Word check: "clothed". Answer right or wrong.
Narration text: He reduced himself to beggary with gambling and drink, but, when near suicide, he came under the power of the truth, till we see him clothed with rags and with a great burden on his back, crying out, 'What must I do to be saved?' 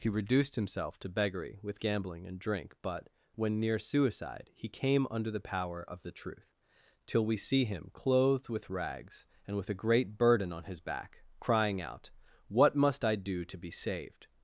right